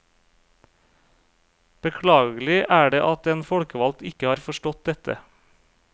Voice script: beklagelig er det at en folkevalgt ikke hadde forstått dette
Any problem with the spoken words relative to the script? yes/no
yes